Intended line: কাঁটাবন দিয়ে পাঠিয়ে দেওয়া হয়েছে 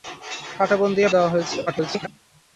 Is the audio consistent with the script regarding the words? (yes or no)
no